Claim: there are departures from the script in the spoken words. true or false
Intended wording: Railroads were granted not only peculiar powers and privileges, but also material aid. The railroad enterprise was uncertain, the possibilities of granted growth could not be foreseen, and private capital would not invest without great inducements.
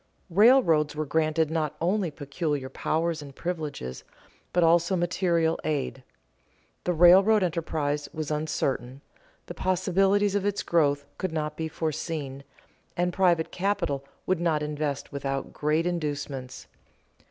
true